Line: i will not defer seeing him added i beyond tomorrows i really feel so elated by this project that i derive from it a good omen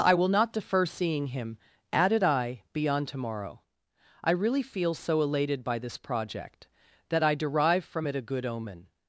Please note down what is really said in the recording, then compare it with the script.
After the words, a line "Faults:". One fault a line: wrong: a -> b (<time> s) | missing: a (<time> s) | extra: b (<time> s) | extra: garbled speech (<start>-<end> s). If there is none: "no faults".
i will not defer seeing him added i beyond tomorrow i really feel so elated by this project that i derive from it a good omen
Faults:
wrong: tomorrows -> tomorrow (3.1 s)